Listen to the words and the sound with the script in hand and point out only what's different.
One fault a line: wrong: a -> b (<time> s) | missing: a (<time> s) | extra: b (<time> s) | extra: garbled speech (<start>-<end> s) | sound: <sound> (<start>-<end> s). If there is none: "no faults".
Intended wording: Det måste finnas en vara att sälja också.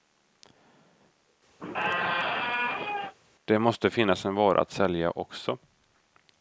sound: squeak (1.6-3.1 s)